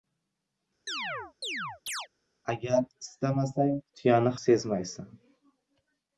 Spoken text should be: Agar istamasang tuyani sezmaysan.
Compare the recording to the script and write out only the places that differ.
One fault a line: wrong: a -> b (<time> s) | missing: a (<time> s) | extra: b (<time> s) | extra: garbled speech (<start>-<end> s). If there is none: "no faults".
no faults